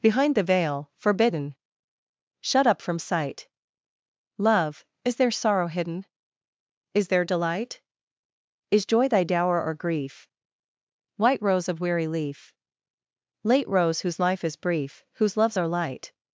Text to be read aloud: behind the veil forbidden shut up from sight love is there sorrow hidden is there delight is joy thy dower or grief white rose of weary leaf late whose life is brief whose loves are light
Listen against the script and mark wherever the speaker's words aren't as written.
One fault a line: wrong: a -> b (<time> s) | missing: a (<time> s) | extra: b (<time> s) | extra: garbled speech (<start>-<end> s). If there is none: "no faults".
extra: rose (13.7 s)